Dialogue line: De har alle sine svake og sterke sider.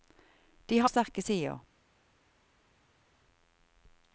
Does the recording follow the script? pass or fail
fail